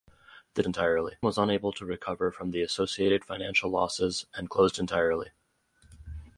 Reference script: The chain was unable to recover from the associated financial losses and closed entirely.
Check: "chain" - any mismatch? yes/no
yes